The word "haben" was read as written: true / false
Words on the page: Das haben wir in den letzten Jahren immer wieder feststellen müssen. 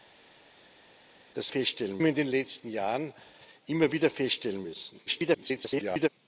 false